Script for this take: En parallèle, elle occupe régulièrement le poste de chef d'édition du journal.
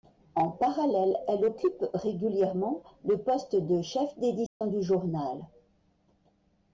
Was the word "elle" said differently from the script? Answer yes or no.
no